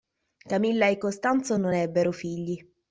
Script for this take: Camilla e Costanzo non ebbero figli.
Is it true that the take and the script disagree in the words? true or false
false